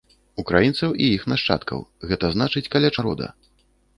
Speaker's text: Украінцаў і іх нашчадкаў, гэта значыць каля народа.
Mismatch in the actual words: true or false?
false